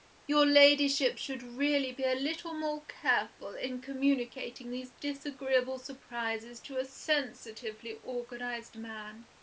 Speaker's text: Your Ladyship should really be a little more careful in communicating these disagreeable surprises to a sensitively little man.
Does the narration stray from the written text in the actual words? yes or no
yes